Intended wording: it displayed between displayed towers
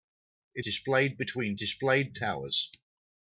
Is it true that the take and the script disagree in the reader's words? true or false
false